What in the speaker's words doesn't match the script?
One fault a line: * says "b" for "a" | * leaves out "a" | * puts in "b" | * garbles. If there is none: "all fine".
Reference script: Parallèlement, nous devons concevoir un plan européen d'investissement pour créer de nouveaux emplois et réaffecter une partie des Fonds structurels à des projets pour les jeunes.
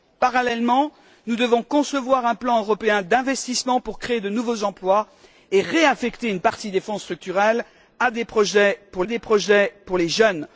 * puts in "des projets pour"